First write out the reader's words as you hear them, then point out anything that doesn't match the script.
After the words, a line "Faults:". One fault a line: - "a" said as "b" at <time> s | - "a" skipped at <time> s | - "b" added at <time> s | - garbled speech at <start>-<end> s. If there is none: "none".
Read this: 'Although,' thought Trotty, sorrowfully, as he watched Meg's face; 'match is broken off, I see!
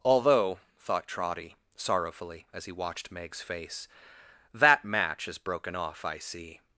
'Although,' thought Trotty, sorrowfully, as he watched Meg's face; 'that match is broken off, I see!
Faults:
- "that" added at 4.5 s